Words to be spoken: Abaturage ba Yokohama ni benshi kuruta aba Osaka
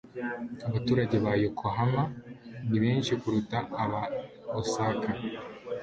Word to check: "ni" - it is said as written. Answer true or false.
true